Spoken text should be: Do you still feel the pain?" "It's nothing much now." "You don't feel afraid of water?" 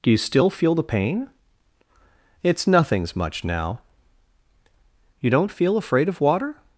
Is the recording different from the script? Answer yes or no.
yes